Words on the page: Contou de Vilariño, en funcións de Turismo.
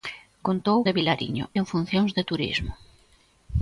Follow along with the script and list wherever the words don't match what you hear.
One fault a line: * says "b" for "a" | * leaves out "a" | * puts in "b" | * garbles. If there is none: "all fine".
all fine